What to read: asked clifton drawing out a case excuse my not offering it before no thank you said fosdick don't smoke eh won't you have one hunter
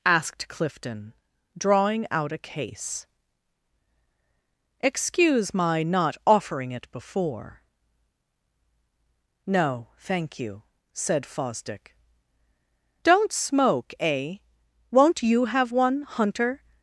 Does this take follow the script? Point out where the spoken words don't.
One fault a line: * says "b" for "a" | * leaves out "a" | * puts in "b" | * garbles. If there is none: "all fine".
all fine